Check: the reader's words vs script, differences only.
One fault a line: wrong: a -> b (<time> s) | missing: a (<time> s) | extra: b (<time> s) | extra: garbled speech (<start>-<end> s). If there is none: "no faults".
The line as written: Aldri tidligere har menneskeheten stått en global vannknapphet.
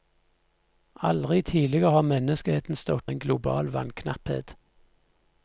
no faults